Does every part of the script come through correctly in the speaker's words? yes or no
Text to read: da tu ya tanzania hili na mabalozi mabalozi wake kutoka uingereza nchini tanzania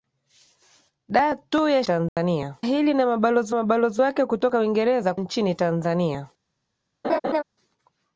yes